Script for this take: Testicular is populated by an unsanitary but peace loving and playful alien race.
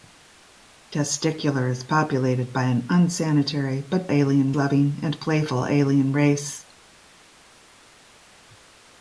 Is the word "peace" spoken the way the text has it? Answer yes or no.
no